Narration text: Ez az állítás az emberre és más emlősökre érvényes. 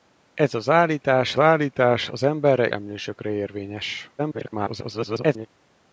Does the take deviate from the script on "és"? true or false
true